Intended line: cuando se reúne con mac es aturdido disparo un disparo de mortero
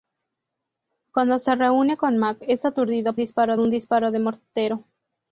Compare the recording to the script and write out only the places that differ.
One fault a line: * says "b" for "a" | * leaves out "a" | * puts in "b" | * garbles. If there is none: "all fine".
all fine